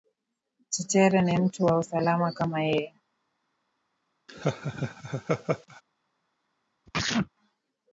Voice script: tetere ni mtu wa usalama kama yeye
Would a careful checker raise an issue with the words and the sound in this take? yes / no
yes